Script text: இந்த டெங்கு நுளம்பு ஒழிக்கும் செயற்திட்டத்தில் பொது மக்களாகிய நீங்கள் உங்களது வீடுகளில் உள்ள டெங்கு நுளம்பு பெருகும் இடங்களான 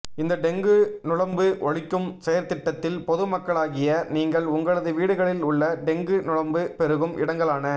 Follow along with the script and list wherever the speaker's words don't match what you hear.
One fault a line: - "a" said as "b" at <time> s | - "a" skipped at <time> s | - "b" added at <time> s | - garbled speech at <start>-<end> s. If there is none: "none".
none